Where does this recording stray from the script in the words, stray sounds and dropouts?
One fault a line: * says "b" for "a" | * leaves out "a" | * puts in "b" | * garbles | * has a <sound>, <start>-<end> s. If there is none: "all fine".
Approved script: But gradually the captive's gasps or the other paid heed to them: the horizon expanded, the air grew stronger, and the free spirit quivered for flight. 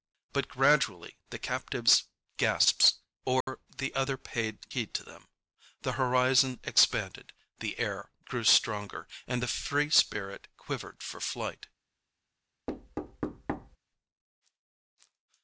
* has a dropout, 3.4-3.5 s
* has a thud, 12.7-13.8 s